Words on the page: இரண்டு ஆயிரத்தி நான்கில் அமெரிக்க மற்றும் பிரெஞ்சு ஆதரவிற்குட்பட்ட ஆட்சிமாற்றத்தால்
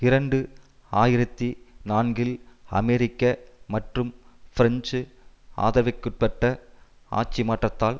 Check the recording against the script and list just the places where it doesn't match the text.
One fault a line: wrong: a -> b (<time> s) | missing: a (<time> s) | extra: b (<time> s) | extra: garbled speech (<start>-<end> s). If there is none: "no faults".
no faults